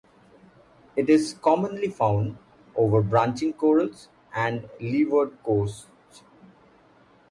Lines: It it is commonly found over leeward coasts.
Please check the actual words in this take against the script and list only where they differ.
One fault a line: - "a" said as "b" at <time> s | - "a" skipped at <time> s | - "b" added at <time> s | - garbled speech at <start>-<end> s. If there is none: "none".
- "it" skipped at 1.1 s
- "branching corals and" added at 3.0 s